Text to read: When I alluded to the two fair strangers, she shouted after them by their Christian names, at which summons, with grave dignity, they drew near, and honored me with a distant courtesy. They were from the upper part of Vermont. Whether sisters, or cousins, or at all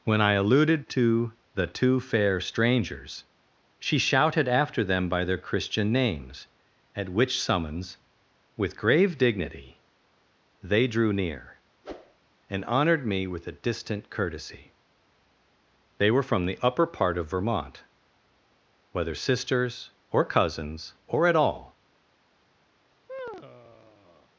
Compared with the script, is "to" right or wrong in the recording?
right